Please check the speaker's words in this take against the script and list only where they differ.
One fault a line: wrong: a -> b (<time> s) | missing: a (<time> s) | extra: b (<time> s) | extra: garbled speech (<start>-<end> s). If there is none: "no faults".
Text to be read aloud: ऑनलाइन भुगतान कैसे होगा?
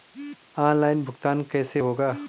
no faults